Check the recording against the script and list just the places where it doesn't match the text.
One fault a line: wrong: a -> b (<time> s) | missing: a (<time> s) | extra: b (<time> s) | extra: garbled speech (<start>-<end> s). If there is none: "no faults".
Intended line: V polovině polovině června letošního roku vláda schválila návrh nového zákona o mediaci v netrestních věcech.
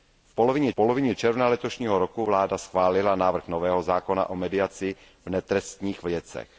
no faults